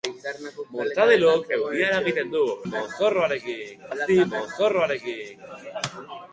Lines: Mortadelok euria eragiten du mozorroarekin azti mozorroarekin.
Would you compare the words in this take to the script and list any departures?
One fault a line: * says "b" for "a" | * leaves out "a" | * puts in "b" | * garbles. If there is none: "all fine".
all fine